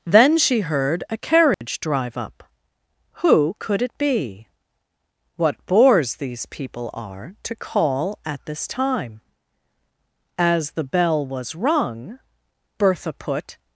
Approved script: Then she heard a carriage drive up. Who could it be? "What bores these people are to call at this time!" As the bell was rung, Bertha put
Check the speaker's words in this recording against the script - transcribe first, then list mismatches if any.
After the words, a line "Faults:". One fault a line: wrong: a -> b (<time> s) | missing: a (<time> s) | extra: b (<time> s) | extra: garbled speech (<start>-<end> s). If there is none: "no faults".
Then she heard a carriage drive up. Who could it be? "What bores these people are to call at this time!" As the bell was rung, Bertha put
Faults:
no faults